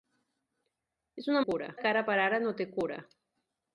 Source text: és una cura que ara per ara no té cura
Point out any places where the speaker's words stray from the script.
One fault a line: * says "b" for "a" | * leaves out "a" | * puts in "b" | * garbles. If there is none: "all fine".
all fine